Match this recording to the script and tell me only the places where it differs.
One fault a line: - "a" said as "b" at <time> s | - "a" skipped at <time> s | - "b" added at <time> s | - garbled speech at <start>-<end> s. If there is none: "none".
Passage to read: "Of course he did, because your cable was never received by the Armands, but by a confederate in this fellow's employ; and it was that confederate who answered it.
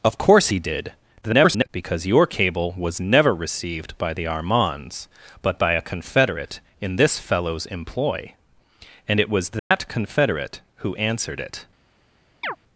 - garbled speech at 1.2-1.7 s